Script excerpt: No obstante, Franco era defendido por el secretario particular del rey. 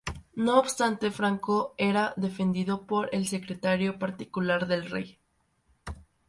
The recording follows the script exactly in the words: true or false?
true